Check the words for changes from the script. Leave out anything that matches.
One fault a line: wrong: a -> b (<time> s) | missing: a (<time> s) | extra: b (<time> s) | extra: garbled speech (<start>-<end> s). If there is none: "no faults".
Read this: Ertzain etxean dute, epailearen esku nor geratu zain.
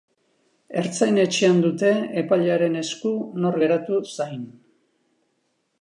no faults